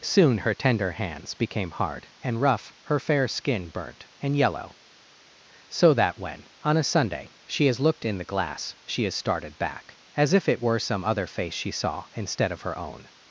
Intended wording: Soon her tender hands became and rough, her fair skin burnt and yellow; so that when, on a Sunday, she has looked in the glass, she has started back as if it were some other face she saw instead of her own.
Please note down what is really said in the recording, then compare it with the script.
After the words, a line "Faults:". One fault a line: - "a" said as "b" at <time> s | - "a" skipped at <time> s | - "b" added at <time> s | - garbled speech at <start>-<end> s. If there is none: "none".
Soon her tender hands became hard and rough, her fair skin burnt and yellow; so that when, on a Sunday, she has looked in the glass, she has started back as if it were some other face she saw instead of her own.
Faults:
- "hard" added at 1.7 s